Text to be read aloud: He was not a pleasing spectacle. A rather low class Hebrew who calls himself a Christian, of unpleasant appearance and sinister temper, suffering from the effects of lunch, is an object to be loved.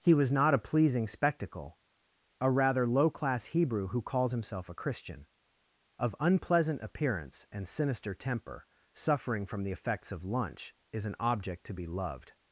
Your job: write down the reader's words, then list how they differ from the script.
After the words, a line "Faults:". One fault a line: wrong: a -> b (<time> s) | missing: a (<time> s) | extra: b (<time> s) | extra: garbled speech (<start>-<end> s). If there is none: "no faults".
He was not a pleasing spectacle. A rather low class Hebrew who calls himself a Christian, of unpleasant appearance and sinister temper, suffering from the effects of lunch, is an object to be loved.
Faults:
no faults